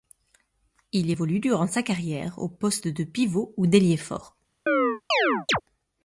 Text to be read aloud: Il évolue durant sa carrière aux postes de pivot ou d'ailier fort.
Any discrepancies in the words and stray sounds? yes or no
yes